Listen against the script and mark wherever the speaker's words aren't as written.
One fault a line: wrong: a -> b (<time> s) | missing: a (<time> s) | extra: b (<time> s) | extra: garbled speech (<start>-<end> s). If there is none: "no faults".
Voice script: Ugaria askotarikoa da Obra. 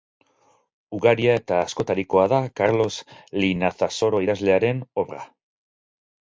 extra: eta (1.4 s)
extra: Karlos Linazasoro idazlearen (2.6 s)